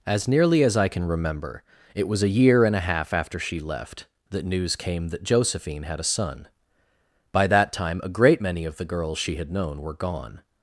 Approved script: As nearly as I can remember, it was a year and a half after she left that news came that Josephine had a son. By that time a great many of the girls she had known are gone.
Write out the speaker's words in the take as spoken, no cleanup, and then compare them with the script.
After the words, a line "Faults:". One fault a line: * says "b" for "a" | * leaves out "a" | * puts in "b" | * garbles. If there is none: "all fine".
As nearly as I can remember, it was a year and a half after she left that news came that Josephine had a son. By that time a great many of the girls she had known were gone.
Faults:
* says "were" for "are"